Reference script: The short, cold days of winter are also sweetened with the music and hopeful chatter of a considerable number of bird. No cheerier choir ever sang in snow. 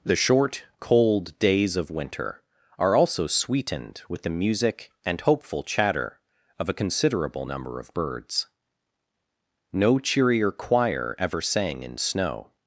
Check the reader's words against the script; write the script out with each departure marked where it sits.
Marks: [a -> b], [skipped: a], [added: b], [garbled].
The short, cold days of winter are also sweetened with the music and hopeful chatter of a considerable number of [bird. -> birds] No cheerier choir ever sang in snow.